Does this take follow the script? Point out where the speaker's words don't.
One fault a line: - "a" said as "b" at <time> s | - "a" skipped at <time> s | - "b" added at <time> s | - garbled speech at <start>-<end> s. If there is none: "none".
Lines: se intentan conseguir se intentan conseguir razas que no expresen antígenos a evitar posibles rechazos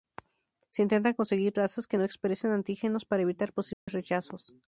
- "se intentan conseguir" skipped at 1.5 s
- "a" said as "para" at 3.0 s